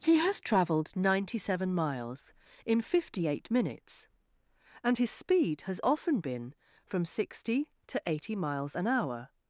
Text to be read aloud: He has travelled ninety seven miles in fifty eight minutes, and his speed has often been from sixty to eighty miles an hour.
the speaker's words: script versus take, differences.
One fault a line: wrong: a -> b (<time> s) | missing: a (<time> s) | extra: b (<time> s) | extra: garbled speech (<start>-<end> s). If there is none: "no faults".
no faults